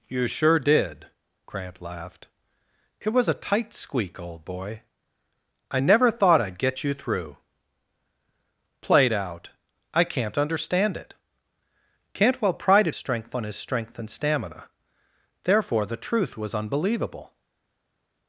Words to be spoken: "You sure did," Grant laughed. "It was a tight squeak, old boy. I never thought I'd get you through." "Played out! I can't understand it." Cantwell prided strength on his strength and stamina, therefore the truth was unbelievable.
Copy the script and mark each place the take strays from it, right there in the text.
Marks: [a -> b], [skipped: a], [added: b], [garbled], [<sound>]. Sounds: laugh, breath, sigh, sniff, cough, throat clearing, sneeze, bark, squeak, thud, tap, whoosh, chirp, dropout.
"You sure did," Grant laughed. "It was a tight squeak, old boy. I never thought I'd get you through." "Played out! I can't understand it." Cantwell prided strength on his strength and stamina, therefore the truth was unbelievable.